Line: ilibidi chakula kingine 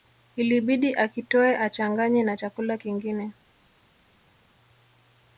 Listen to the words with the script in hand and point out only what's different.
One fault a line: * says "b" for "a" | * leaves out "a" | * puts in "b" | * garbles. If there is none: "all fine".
* puts in "akitoe achanganye na"